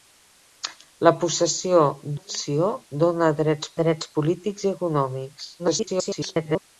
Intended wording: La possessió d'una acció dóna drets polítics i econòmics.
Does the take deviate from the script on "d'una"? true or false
true